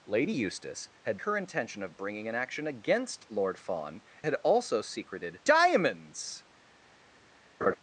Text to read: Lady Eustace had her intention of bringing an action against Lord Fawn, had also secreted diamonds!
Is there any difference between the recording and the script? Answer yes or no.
no